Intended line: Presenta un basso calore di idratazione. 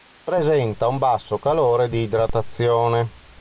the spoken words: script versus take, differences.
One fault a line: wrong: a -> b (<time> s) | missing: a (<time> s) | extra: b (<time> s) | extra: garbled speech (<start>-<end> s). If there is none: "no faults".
no faults